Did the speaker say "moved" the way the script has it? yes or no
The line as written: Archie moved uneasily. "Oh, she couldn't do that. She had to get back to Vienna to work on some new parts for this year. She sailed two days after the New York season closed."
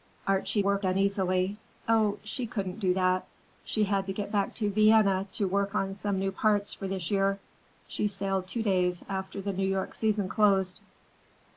no